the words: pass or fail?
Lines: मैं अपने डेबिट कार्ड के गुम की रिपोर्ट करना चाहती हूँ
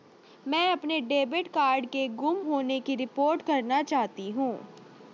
fail